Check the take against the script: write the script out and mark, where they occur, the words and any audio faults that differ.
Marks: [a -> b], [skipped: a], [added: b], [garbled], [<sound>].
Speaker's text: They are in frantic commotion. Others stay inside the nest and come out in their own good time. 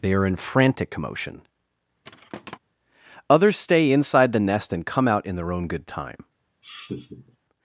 They are in frantic commotion. [thud] Others stay inside the nest and come out in their own good time. [laugh]